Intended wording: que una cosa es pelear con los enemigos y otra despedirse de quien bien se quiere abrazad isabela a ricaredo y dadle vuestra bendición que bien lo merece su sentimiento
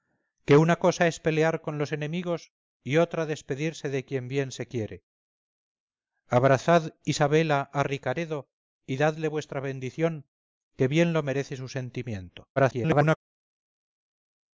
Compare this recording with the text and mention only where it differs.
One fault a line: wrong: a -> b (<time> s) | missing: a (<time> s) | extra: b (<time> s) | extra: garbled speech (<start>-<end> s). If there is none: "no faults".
extra: garbled speech (12.6-13.2 s)